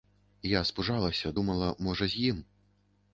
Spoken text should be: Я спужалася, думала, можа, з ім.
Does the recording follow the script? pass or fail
pass